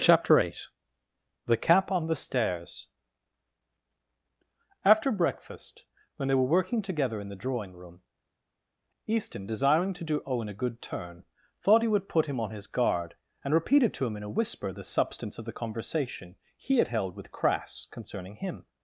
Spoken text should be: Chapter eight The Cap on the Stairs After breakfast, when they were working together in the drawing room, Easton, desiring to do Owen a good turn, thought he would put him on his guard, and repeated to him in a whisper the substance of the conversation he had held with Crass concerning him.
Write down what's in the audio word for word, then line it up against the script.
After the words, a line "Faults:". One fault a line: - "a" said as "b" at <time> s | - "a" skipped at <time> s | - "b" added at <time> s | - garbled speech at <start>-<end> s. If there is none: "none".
Chapter eight The Cap on the Stairs After breakfast, when they were working together in the drawing room, Easton, desiring to do Owen a good turn, thought he would put him on his guard, and repeated to him in a whisper the substance of the conversation he had held with Crass concerning him.
Faults:
none